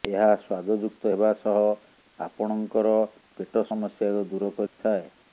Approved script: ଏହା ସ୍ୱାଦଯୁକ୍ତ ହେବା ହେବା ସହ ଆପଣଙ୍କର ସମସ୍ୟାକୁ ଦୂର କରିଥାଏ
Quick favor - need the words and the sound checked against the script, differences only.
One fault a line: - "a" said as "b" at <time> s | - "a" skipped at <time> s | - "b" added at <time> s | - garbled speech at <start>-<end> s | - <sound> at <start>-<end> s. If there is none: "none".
- "ହେବା" skipped at 1.3 s
- "ପେଟ" added at 3.4 s
- dropout at 4.7-4.8 s